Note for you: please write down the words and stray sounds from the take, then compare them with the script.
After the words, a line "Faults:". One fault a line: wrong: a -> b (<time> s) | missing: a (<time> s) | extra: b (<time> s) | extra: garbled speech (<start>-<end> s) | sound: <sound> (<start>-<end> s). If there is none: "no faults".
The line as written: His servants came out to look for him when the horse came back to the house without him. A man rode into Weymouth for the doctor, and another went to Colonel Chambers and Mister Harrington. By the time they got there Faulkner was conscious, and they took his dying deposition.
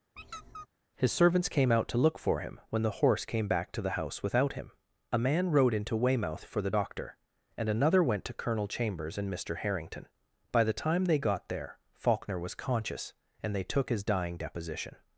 His servants came out to look for him when the horse came back to the house without him. A man rode into Weymouth for the doctor, and another went to Colonel Chambers and Mister Harrington. By the time they got there Faulkner was conscious, and they took his dying deposition.
Faults:
sound: squeak (0.2-0.7 s)